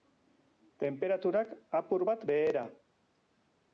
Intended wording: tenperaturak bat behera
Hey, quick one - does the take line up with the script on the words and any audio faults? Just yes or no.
no